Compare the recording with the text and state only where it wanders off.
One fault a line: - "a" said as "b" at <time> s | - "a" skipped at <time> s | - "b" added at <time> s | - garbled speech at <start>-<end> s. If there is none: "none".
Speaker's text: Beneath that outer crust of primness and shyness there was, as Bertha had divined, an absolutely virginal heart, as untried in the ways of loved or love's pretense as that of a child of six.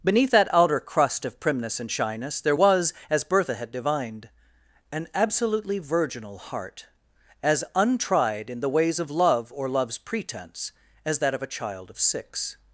- "loved" said as "love" at 9.1 s